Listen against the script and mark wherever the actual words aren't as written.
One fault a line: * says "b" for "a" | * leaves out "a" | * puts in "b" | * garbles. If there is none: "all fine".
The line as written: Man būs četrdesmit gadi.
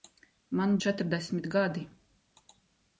* leaves out "būs"